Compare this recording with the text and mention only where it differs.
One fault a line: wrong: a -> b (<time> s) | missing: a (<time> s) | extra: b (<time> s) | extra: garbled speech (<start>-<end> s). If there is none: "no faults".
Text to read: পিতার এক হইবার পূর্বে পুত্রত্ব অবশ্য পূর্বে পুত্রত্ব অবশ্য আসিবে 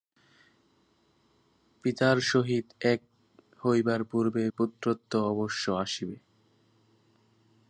extra: সহিত (2.2 s)
missing: পূর্বে পুত্রত্ব অবশ্য (5.6 s)